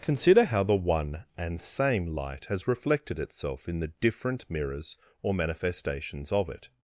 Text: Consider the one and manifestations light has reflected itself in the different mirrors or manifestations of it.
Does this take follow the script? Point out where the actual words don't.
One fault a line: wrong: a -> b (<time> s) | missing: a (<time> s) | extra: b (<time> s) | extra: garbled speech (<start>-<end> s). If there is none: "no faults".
extra: how (0.5 s)
wrong: manifestations -> same (1.6 s)